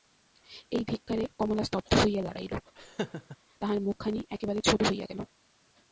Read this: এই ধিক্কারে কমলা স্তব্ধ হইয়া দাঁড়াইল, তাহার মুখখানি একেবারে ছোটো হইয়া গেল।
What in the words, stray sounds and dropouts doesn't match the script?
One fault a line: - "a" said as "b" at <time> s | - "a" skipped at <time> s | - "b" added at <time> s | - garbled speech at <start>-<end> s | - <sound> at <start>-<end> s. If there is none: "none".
- laugh at 2.8-3.4 s